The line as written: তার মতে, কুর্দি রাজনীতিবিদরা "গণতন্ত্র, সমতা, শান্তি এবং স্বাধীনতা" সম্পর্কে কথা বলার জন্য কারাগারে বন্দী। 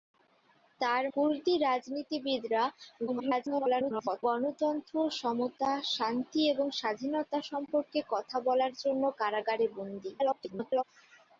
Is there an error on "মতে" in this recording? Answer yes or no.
yes